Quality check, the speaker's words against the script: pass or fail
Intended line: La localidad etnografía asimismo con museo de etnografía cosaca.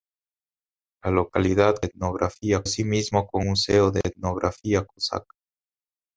pass